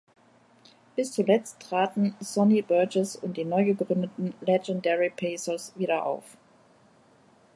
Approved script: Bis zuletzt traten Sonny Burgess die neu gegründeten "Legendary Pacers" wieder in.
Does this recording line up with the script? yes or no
no